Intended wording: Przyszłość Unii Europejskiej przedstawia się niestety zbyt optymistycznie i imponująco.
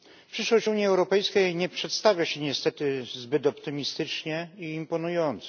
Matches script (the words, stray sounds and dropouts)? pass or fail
fail